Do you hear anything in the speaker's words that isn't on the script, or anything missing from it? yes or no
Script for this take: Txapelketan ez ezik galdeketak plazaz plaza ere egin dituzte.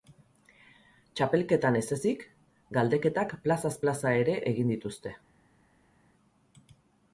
no